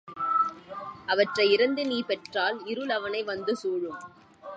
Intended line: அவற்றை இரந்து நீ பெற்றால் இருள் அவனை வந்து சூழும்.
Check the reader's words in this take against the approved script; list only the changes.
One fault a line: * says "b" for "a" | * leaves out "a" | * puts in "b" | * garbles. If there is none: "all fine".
all fine